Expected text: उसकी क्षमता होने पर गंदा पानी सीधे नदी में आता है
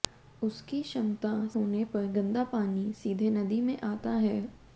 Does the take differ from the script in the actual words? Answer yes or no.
no